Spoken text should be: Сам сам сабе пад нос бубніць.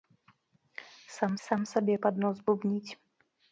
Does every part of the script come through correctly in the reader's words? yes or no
yes